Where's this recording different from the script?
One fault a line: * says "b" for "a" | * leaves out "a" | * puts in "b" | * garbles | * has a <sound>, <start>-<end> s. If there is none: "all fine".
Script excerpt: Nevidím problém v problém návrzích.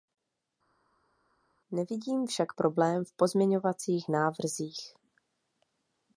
* puts in "však"
* says "pozměňovacích" for "problém"